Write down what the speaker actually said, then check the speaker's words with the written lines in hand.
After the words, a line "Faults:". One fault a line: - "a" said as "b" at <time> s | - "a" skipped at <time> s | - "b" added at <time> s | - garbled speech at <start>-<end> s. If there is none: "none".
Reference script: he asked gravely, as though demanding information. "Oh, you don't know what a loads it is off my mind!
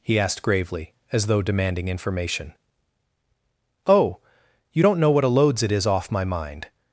he asked gravely, as though demanding information. "Oh, you don't know what a loads it is off my mind!
Faults:
none